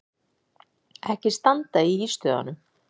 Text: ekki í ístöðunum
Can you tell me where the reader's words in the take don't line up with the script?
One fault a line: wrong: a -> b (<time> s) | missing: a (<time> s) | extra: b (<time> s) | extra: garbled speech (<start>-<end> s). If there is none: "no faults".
extra: standa (1.4 s)